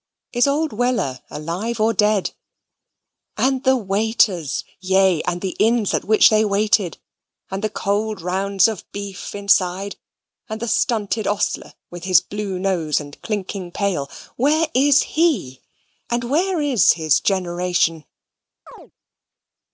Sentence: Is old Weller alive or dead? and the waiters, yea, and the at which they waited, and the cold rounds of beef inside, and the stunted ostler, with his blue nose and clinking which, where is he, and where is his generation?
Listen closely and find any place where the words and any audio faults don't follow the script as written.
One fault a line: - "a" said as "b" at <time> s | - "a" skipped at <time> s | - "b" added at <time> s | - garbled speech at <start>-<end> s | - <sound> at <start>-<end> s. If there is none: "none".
- "inns" added at 5.6 s
- "which" said as "pail" at 13.7 s
- chirp at 18.7-18.9 s